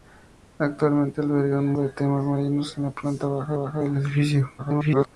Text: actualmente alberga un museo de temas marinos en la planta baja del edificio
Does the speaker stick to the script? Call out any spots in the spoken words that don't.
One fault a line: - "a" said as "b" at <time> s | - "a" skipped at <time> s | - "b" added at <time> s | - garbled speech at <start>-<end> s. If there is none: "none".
- "museo" skipped at 1.7 s
- "baja" added at 3.5 s
- garbled speech at 4.6-5.1 s